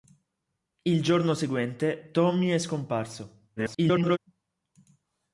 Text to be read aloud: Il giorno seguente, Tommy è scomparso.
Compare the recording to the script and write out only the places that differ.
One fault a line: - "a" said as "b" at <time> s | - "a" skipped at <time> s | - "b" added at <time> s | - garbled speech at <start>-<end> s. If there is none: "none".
- garbled speech at 3.6-4.2 s